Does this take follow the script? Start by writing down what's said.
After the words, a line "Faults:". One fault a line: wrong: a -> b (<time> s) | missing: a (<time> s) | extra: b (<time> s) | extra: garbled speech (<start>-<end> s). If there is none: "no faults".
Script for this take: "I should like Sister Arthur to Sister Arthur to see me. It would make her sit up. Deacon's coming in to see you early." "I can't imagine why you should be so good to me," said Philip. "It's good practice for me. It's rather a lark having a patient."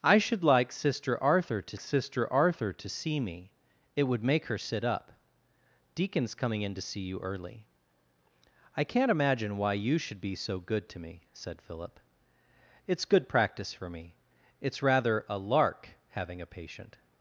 "I should like Sister Arthur to Sister Arthur to see me. It would make her sit up. Deacon's coming in to see you early." "I can't imagine why you should be so good to me," said Philip. "It's good practice for me. It's rather a lark having a patient."
Faults:
no faults